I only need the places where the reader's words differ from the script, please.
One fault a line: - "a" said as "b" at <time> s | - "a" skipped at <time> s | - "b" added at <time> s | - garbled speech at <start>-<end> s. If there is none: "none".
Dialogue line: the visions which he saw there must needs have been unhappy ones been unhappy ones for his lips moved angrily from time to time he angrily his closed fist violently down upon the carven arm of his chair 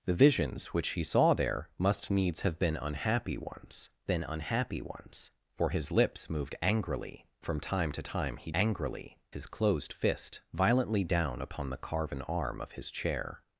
none